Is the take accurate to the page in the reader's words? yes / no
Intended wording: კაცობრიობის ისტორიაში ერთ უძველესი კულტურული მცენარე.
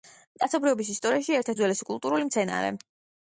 yes